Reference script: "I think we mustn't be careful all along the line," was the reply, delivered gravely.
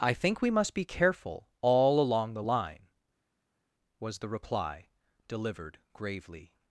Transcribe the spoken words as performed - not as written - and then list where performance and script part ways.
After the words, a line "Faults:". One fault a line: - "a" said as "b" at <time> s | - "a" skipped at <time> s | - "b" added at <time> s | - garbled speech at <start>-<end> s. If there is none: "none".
"I think we must be careful all along the line," was the reply, delivered gravely.
Faults:
- "mustn't" said as "must" at 0.5 s